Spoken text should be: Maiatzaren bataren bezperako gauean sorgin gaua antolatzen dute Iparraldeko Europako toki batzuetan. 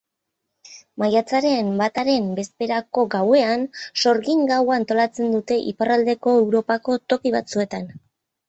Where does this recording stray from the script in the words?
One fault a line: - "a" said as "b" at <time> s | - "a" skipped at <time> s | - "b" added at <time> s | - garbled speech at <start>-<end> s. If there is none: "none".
none